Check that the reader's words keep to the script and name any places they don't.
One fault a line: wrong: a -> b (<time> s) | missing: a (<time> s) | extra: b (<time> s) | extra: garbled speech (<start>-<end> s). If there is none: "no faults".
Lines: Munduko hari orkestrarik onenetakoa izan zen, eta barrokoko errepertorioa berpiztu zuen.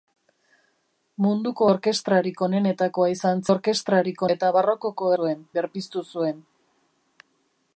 missing: hari (1.7 s)
wrong: zen -> orkestrarik (3.5 s)
wrong: errepertorioa -> zuen (5.2 s)